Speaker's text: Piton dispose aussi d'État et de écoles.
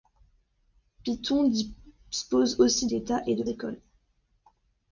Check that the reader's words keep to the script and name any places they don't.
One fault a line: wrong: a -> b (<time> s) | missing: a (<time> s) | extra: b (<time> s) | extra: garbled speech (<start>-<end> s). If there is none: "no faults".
no faults